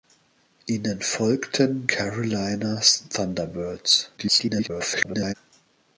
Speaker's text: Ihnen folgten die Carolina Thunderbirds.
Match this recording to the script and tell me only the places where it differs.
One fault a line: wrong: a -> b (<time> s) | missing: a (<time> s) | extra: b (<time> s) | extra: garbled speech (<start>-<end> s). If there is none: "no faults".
missing: die (1.9 s)
extra: garbled speech (4.2-5.3 s)